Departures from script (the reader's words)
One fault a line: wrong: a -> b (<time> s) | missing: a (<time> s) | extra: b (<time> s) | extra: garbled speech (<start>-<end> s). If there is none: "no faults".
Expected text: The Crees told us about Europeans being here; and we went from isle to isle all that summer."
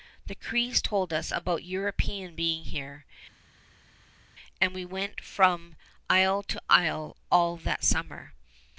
no faults